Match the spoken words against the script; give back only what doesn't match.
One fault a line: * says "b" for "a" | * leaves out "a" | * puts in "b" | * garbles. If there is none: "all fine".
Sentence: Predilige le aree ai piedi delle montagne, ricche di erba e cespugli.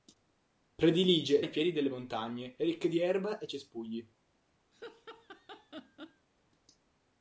* leaves out "le aree"